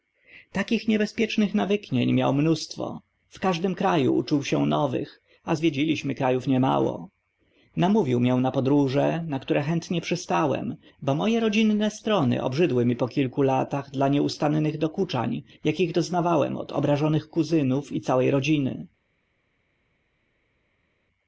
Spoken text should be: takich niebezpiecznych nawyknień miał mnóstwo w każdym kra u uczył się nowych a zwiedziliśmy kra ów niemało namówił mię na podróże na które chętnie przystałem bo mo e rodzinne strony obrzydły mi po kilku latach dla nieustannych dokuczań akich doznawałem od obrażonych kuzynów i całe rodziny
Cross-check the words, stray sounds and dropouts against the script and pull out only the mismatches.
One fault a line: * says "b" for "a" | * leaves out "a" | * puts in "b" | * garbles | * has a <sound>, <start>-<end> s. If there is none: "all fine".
all fine